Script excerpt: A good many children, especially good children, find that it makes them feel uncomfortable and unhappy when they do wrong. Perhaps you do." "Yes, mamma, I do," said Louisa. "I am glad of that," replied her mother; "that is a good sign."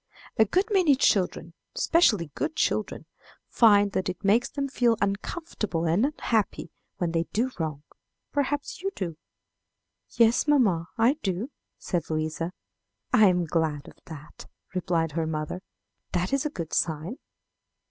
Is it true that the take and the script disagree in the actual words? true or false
false